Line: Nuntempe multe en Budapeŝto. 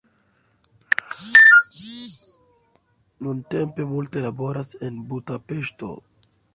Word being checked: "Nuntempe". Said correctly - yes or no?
yes